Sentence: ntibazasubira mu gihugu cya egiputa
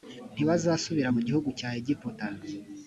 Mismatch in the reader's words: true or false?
false